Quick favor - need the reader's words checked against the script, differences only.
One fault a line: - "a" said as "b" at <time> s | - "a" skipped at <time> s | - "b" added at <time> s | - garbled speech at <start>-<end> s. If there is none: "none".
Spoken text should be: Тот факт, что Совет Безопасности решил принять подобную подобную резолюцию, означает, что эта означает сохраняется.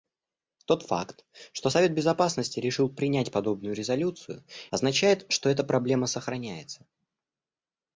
- "подобную" skipped at 3.7 s
- "означает" said as "проблема" at 5.6 s